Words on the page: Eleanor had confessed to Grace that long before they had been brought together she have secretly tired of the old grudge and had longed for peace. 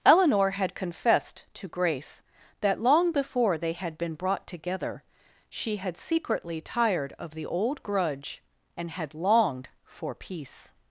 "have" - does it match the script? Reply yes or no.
no